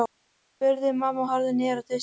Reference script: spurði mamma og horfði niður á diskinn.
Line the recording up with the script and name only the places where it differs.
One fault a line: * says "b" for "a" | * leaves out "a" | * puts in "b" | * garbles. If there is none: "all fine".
all fine